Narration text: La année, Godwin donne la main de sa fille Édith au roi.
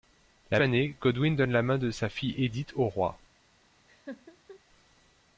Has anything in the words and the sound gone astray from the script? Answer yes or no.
yes